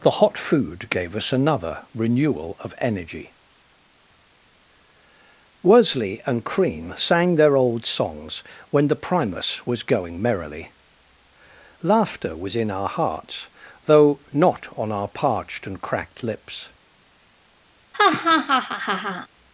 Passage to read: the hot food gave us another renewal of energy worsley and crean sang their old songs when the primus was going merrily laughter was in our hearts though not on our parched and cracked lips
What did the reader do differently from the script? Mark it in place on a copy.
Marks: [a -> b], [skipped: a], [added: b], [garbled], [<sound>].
the hot food gave us another renewal of energy worsley and crean sang their old songs when the primus was going merrily laughter was in our hearts though not on our parched and cracked lips [laugh]